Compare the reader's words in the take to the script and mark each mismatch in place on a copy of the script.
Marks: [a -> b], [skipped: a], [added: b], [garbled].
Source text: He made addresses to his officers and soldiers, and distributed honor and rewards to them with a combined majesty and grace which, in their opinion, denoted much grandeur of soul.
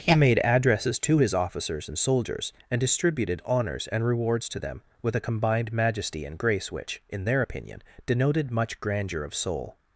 He made addresses to his officers and soldiers, and distributed [honor -> honors] and rewards to them with a combined majesty and grace which, in their opinion, denoted much grandeur of soul.